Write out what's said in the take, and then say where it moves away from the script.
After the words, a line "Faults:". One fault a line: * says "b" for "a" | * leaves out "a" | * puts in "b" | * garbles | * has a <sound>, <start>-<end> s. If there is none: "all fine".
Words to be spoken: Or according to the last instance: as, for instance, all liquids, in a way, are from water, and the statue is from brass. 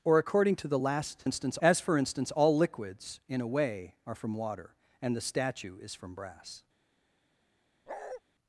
Or according to the last instance: as, for instance, all liquids, in a way, are from water, and the statue is from brass.
Faults:
* has a bark, 7.9-8.2 s